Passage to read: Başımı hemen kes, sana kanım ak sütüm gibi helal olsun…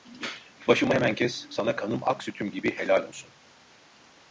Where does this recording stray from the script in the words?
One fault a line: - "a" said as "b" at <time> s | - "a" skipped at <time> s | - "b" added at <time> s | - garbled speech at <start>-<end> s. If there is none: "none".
none